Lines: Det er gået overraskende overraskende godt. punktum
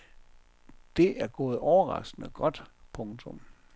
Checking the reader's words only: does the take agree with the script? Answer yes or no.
no